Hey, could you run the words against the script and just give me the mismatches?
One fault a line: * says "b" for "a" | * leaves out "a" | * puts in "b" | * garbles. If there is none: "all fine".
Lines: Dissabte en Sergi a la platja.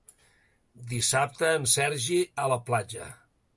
all fine